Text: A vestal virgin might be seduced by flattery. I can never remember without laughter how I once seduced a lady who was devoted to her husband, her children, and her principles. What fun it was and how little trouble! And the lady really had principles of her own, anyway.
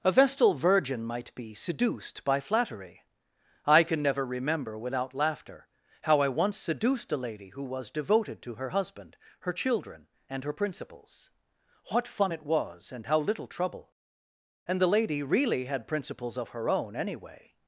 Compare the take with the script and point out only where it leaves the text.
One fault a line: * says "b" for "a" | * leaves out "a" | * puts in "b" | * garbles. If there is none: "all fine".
all fine